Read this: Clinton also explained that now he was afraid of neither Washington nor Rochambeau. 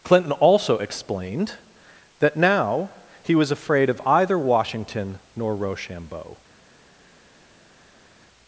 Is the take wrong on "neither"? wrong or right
wrong